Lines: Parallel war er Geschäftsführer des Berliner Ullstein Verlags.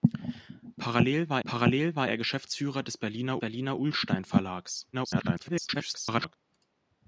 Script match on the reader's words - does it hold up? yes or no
no